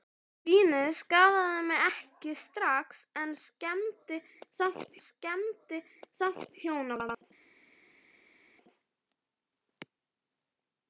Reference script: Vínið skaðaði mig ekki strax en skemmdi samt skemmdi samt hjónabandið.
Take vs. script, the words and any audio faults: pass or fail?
pass